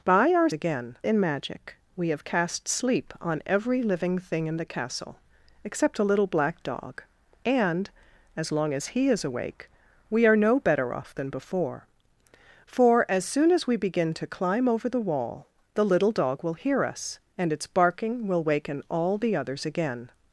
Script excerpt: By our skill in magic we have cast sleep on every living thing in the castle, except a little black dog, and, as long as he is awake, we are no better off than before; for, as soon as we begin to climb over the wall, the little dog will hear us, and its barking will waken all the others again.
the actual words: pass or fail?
fail